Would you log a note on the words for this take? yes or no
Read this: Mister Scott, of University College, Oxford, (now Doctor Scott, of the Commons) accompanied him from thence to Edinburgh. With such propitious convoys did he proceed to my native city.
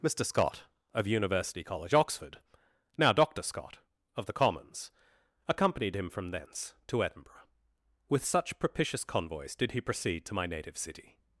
no